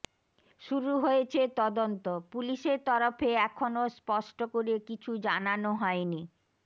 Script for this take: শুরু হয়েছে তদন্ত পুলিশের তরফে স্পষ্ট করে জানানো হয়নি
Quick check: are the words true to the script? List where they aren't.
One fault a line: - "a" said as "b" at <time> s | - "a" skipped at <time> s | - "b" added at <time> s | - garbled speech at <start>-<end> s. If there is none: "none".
- "এখনও" added at 3.5 s
- "কিছু" added at 4.9 s